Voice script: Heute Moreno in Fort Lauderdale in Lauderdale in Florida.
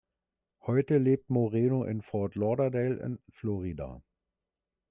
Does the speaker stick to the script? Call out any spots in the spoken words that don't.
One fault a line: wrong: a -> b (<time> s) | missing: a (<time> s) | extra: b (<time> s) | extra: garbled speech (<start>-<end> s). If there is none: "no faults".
extra: lebt (1.0 s)
missing: Lauderdale in (3.2 s)